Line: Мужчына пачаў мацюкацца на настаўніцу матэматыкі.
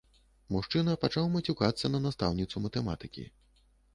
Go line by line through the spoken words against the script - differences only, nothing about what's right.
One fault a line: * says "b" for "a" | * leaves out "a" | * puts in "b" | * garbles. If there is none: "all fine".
all fine